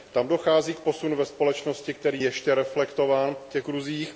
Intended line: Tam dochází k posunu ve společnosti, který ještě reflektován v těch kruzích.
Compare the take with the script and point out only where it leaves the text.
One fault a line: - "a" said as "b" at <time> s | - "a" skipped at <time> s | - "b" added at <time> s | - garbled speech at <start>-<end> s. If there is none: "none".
none